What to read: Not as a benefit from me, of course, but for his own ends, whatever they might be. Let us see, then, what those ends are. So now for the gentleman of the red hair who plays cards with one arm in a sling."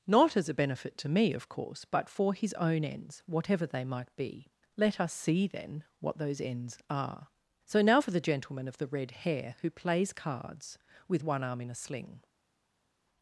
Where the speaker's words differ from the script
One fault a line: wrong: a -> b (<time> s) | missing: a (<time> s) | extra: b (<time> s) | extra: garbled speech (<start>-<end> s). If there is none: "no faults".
wrong: from -> to (1.0 s)